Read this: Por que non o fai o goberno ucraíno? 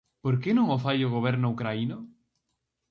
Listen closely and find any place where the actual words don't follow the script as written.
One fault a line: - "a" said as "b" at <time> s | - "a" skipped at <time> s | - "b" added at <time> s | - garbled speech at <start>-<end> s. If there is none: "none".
none